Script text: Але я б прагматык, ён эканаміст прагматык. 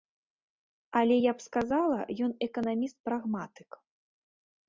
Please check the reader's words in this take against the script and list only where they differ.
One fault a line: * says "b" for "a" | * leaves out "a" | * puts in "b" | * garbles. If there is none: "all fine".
* says "сказала" for "прагматык"